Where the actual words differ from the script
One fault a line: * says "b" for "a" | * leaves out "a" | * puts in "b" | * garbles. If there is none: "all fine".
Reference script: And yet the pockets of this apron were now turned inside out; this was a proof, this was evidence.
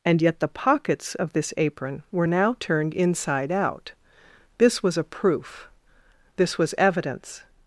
all fine